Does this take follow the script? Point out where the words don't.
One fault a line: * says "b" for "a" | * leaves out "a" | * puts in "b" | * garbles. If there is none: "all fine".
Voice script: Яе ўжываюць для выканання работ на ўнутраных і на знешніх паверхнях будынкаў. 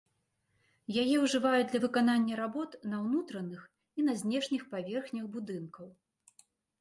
all fine